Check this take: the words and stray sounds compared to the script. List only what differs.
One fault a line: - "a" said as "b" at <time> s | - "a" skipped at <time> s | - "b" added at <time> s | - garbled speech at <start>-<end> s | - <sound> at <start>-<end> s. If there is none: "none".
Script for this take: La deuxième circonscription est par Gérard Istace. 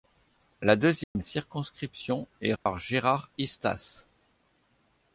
- dropout at 1.0-1.2 s
- dropout at 2.6-2.7 s